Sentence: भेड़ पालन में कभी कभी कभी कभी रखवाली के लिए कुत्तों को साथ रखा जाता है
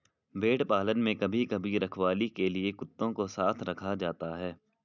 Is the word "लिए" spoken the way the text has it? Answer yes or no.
yes